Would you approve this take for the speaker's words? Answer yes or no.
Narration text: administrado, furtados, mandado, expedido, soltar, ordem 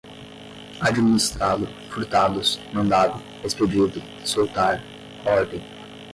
yes